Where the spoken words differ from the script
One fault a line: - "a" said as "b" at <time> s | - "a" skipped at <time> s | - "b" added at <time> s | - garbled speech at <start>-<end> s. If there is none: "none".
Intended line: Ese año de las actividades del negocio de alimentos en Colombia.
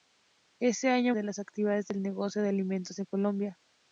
none